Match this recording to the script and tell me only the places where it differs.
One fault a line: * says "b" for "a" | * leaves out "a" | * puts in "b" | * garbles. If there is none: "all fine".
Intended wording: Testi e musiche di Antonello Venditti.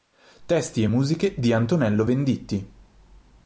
all fine